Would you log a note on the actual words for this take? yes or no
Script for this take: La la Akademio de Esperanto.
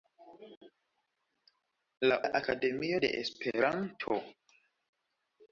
no